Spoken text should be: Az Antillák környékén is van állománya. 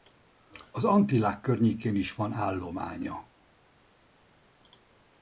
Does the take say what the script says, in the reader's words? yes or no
yes